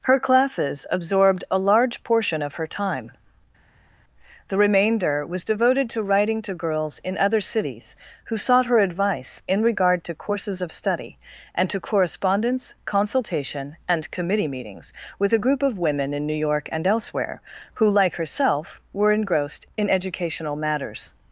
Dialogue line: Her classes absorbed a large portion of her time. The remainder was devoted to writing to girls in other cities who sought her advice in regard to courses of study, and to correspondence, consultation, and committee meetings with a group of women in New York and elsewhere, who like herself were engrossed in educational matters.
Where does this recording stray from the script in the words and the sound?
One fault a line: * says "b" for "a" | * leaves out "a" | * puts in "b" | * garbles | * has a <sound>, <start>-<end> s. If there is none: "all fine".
all fine